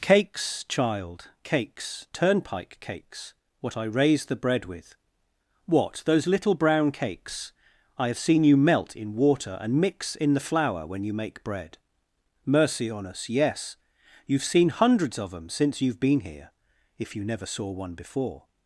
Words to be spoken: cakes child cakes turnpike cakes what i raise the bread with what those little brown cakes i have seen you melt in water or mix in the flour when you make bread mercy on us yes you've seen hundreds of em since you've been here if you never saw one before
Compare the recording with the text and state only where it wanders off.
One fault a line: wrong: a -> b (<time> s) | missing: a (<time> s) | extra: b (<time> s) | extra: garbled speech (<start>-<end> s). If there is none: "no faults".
wrong: or -> and (9.6 s)